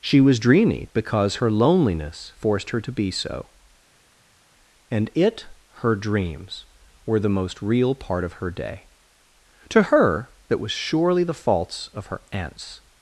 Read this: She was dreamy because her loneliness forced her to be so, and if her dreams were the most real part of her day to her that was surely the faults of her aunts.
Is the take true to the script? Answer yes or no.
no